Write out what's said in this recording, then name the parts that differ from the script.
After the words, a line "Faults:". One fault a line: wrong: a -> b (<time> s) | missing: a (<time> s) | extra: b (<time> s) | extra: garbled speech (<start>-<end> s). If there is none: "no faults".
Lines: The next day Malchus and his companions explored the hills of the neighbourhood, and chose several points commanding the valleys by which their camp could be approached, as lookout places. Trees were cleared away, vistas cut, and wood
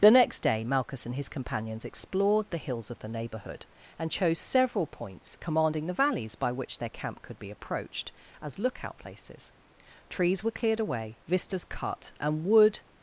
The next day Malchus and his companions explored the hills of the neighbourhood, and chose several points commanding the valleys by which their camp could be approached, as lookout places. Trees were cleared away, vistas cut, and wood
Faults:
no faults